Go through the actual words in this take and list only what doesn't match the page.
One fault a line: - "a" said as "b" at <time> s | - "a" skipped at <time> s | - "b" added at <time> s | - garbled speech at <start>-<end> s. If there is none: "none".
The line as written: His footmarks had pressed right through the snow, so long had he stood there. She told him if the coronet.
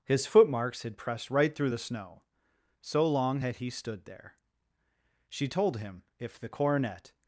none